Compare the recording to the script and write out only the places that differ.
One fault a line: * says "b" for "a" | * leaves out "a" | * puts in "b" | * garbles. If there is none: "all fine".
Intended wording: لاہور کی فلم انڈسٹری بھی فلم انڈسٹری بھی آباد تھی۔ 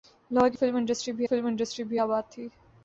all fine